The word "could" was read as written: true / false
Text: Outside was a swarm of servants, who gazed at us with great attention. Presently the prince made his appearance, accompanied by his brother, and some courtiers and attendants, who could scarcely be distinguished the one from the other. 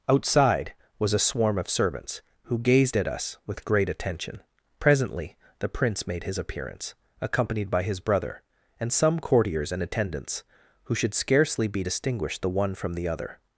false